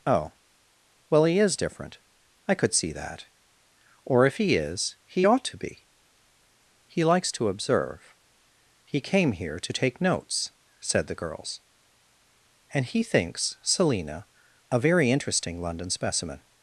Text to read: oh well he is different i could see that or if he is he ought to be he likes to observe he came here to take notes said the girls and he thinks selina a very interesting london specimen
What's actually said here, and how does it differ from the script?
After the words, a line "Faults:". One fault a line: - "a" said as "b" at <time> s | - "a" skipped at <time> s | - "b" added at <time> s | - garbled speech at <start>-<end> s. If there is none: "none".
oh well he is different i could see that or if he is he ought to be he likes to observe he came here to take notes said the girls and he thinks selina a very interesting london specimen
Faults:
none